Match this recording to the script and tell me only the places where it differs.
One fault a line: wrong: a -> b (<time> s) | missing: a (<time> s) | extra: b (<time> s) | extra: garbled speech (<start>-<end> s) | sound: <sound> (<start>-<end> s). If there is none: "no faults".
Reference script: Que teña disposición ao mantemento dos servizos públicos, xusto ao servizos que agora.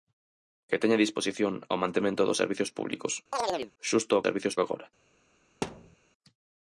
sound: chirp (3.3-3.7 s)
sound: thud (5.6-6.0 s)